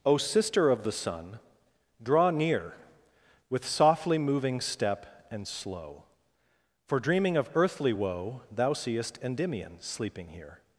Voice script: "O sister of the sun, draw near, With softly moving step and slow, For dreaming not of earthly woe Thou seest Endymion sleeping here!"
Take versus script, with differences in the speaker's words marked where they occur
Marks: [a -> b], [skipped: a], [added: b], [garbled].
"O sister of the sun, draw near, With softly moving step and slow, For dreaming [skipped: not] of earthly woe Thou seest Endymion sleeping here!"